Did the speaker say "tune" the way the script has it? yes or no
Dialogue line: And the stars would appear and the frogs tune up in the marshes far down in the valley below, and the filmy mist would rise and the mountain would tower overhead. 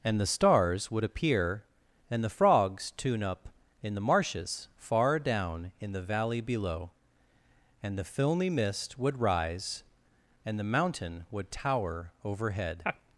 yes